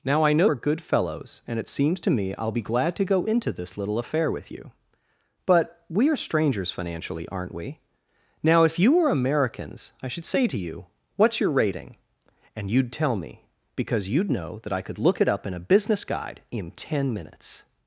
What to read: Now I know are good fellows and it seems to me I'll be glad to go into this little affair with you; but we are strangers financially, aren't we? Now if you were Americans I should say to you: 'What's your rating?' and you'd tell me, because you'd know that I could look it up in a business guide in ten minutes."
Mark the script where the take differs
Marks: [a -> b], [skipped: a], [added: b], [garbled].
Now I know are good fellows and it seems to me I'll be glad to go into this little affair with you; but we are strangers financially, aren't we? Now if you were Americans I should say to you: 'What's your rating?' and you'd tell me, because you'd know that I could look it up in a business guide in ten minutes."